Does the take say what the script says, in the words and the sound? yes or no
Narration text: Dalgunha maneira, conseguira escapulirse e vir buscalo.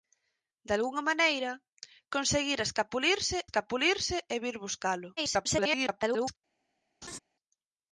no